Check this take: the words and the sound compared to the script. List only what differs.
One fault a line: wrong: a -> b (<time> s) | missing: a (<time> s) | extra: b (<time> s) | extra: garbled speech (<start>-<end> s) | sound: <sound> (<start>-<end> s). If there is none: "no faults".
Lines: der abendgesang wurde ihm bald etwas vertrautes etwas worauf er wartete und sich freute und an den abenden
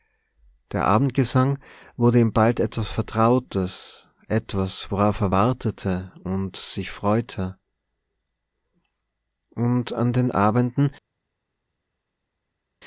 no faults